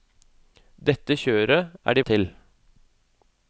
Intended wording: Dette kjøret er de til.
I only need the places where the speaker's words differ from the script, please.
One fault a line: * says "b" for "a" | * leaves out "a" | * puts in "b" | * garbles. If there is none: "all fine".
all fine